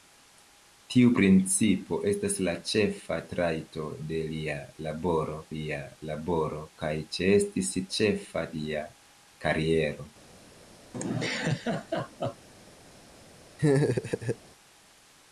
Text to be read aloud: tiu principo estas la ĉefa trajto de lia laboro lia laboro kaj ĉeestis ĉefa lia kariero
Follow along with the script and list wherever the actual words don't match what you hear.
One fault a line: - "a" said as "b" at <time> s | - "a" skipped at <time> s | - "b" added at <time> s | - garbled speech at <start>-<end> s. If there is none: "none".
none